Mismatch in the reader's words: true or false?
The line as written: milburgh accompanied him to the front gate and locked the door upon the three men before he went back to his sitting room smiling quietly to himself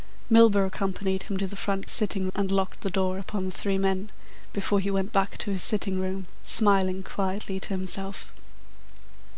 true